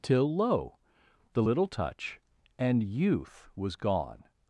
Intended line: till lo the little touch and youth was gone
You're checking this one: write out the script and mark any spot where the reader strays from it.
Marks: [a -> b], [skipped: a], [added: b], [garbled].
till lo the little touch and youth was gone